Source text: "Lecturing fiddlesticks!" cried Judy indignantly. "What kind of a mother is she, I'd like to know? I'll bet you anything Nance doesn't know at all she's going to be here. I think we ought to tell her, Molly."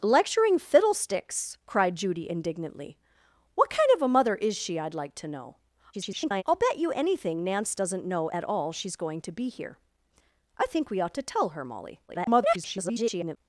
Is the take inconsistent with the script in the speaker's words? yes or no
yes